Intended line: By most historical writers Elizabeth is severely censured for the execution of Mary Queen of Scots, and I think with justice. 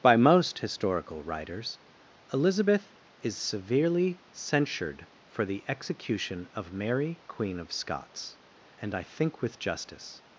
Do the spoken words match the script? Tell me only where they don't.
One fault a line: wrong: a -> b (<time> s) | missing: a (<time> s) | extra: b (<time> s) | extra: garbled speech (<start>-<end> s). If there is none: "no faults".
no faults